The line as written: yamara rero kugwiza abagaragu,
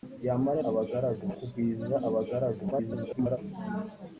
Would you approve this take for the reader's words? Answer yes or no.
no